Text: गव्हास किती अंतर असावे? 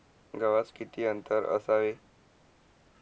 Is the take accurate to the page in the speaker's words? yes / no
yes